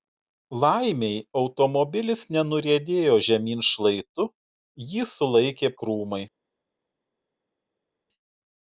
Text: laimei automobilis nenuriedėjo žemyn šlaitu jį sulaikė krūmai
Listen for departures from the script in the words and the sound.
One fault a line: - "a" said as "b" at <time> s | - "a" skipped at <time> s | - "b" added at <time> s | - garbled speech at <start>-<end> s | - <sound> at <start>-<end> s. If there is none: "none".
none